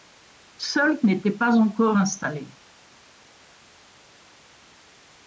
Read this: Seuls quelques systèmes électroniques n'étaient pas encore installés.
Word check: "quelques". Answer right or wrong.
wrong